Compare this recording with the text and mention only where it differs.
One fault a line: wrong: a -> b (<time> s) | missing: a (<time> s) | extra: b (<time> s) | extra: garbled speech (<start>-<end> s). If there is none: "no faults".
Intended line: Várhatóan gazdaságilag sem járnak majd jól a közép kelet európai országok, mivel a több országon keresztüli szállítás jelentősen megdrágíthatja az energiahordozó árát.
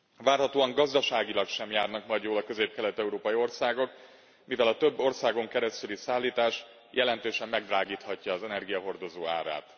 no faults